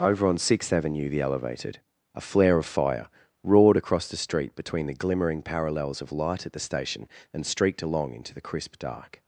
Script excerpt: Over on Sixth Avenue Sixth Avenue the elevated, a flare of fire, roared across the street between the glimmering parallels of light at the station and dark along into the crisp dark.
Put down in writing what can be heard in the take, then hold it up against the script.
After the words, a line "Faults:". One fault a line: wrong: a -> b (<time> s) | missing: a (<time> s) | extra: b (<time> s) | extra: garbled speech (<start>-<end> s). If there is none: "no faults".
Over on Sixth Avenue the elevated, a flare of fire, roared across the street between the glimmering parallels of light at the station and streaked along into the crisp dark.
Faults:
missing: Sixth Avenue (1.1 s)
wrong: dark -> streaked (7.4 s)